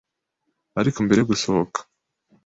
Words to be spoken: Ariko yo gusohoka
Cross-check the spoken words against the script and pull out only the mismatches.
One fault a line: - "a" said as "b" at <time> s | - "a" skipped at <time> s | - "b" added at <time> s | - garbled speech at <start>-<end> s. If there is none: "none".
- "mbere" added at 1.0 s